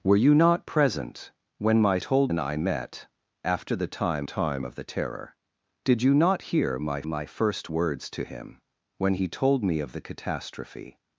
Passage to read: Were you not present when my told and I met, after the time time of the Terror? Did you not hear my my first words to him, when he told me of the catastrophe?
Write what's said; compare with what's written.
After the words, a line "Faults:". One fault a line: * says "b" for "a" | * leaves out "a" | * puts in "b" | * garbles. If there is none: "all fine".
Were you not present when my told and I met, after the time time of the Terror? Did you not hear my my first words to him, when he told me of the catastrophe?
Faults:
all fine